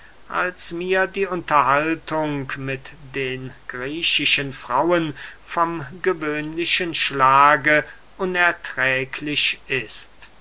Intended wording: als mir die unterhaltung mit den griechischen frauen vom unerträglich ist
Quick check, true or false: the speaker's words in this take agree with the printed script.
false